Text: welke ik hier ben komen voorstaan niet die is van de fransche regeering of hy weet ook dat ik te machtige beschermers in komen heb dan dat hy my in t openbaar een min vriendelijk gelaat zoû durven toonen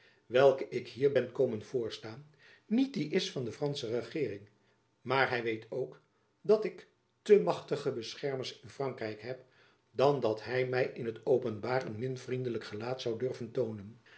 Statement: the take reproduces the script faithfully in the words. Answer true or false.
false